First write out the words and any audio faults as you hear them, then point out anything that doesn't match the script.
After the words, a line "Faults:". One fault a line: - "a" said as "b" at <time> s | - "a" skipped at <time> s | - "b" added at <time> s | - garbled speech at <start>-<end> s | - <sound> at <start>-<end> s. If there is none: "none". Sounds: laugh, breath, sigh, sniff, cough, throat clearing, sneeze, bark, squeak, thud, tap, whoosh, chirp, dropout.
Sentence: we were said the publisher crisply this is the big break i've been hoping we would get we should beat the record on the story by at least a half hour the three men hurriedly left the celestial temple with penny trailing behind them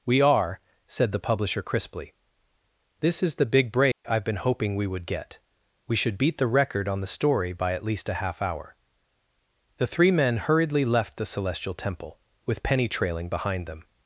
we are said the publisher crisply this is the big break i've been hoping we would get we should beat the record on the story by at least a half hour the three men hurriedly left the celestial temple with penny trailing behind them
Faults:
- "were" said as "are" at 0.2 s
- dropout at 3.9-4.0 s